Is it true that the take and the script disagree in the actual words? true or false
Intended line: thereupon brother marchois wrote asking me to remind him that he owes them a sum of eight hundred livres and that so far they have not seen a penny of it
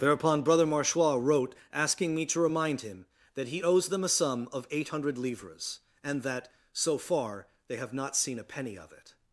false